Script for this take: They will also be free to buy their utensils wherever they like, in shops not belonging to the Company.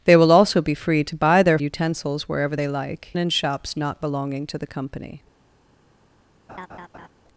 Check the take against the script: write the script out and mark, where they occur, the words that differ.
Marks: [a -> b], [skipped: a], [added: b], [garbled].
They will also be free to buy their utensils wherever they like, in shops not belonging to the Company.